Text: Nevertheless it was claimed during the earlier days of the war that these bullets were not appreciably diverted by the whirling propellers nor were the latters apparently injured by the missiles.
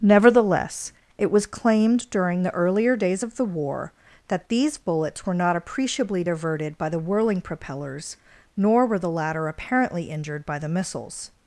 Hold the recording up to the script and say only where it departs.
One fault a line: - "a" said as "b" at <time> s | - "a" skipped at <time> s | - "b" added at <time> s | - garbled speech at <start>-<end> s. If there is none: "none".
- "latters" said as "latter" at 9.1 s